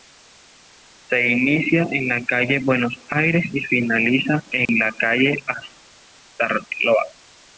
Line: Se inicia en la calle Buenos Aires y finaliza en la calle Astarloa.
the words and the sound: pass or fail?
fail